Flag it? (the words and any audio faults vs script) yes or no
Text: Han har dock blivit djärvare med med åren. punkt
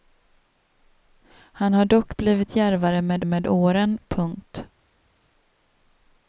no